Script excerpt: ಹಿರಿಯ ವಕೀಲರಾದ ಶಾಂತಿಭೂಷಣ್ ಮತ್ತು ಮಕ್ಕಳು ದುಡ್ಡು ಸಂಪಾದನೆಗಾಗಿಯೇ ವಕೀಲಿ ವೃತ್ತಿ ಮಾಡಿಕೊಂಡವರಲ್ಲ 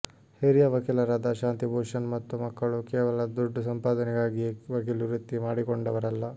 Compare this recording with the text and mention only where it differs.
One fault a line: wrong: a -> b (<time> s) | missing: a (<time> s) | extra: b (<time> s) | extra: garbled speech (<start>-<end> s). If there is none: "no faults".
extra: ಕೇವಲ (2.9 s)